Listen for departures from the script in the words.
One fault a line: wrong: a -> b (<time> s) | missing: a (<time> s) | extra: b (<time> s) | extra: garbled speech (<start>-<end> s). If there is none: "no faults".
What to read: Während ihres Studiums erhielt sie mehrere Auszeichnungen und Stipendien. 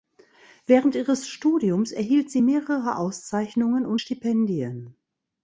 no faults